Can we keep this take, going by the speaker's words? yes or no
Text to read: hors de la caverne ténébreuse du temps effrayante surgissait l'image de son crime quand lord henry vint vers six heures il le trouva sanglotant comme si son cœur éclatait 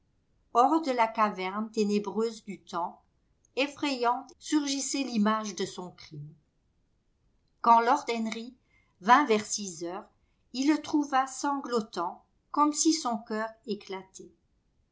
yes